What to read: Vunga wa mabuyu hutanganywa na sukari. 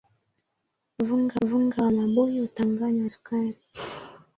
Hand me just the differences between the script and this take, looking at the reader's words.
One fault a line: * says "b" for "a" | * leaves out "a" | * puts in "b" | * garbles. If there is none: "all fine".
* puts in "vunga"
* leaves out "na"